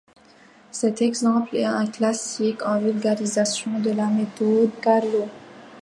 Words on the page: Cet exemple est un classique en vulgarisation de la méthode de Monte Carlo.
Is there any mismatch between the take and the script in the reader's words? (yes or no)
yes